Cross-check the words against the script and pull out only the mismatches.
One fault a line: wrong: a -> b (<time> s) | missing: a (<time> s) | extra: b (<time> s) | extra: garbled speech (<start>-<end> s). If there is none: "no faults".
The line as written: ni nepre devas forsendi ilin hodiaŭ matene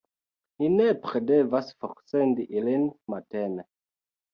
missing: hodiaŭ (2.9 s)